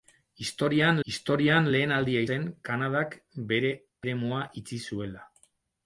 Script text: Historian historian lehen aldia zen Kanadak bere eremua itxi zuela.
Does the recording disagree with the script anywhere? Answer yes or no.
no